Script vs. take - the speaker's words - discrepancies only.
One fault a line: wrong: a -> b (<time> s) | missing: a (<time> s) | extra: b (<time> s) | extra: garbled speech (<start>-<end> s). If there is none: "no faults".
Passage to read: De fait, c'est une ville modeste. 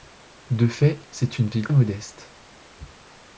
no faults